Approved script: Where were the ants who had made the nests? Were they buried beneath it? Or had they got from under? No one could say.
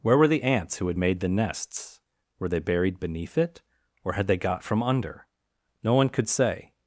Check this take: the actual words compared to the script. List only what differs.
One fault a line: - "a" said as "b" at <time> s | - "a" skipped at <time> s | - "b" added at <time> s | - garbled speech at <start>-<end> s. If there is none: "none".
none